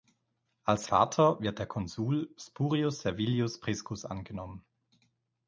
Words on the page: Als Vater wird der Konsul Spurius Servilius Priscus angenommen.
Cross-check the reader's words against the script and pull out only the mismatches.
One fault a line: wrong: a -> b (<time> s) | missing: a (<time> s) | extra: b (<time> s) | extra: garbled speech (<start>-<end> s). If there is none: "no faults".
no faults